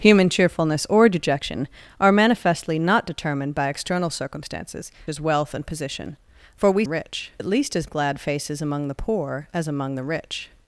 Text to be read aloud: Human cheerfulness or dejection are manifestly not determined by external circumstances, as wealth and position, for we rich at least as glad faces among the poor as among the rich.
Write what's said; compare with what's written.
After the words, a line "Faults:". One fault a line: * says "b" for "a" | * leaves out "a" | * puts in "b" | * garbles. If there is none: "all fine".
Human cheerfulness or dejection are manifestly not determined by external circumstances, as wealth and position, for we rich at least as glad faces among the poor as among the rich.
Faults:
all fine